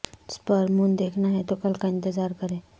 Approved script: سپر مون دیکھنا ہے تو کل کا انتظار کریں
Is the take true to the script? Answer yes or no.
yes